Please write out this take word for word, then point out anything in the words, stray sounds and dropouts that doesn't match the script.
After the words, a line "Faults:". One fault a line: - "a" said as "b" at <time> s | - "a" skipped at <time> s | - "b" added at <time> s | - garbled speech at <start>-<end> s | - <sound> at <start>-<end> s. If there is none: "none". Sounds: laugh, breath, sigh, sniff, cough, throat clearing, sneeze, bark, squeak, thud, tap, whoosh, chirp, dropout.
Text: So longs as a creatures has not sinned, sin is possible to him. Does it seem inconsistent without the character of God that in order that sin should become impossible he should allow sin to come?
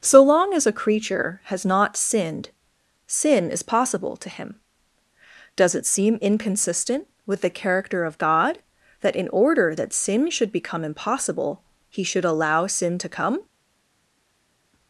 So long as a creature has not sinned, sin is possible to him. Does it seem inconsistent with the character of God that in order that sin should become impossible he should allow sin to come?
Faults:
- "longs" said as "long" at 0.2 s
- "creatures" said as "creature" at 0.7 s
- "without" said as "with" at 7.3 s